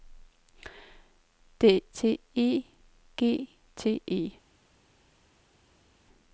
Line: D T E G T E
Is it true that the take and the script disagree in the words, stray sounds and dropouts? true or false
false